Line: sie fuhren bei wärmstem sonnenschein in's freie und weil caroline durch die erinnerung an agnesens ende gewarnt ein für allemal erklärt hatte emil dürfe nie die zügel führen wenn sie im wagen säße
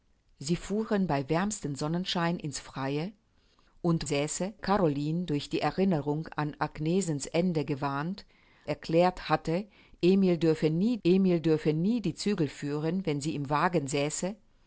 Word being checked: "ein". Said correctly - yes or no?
no